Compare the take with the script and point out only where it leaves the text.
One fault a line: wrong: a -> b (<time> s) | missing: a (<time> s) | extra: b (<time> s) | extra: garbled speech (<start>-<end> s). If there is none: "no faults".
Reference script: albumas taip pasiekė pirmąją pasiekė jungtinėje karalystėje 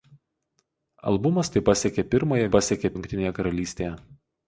no faults